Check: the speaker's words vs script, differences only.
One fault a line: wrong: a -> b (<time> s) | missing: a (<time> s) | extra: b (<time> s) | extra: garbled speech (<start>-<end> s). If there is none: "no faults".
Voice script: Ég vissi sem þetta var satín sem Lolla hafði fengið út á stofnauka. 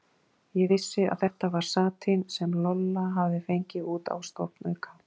wrong: sem -> að (1.1 s)